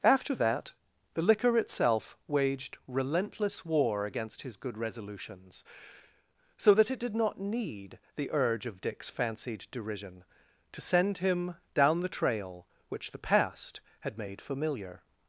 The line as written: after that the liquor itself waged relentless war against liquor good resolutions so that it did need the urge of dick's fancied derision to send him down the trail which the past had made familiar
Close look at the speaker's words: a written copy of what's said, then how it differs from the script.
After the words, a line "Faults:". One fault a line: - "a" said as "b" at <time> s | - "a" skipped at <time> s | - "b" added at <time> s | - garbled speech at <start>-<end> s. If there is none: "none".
after that the liquor itself waged relentless war against his good resolutions so that it did not need the urge of dick's fancied derision to send him down the trail which the past had made familiar
Faults:
- "liquor" said as "his" at 4.4 s
- "not" added at 7.2 s